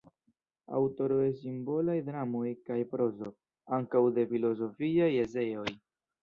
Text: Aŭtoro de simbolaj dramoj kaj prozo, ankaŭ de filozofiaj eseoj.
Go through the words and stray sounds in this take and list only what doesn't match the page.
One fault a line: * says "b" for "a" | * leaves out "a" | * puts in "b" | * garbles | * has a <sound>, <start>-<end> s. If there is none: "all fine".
all fine